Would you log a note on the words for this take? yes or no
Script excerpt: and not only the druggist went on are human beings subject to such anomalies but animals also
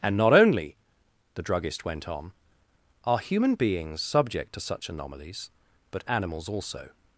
no